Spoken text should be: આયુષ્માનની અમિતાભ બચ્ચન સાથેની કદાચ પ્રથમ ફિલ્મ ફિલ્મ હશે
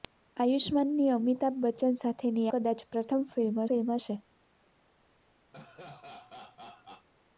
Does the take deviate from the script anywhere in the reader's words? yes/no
no